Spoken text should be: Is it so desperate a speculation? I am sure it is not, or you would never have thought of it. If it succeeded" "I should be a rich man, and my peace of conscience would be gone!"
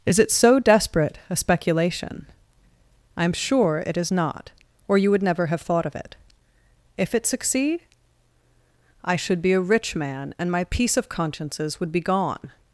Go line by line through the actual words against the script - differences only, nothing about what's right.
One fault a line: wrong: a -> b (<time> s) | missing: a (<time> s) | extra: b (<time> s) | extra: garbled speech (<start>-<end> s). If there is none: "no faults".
wrong: succeeded -> succeed (7.3 s)
wrong: conscience -> consciences (11.1 s)